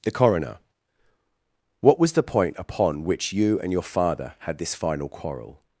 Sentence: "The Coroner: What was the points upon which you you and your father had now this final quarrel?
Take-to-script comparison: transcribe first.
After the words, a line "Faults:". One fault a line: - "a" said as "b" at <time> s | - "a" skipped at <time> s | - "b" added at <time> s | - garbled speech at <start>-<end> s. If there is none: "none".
"The Coroner: What was the point upon which you and your father had this final quarrel?
Faults:
- "points" said as "point" at 2.2 s
- "you" skipped at 3.6 s
- "now" skipped at 4.6 s